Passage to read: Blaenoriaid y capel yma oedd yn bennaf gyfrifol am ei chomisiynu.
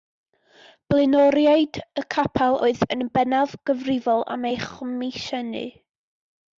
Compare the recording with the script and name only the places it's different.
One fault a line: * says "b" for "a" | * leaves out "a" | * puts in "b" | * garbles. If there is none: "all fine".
* leaves out "yma"